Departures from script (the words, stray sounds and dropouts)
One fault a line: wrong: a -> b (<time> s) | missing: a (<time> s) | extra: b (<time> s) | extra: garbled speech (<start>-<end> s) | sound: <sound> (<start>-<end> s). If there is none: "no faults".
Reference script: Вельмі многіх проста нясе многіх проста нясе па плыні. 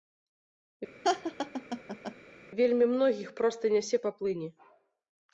sound: laugh (1.0-2.2 s)
missing: многіх проста нясе (4.0 s)